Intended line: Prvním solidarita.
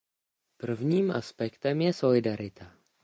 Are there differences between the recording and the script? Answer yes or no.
yes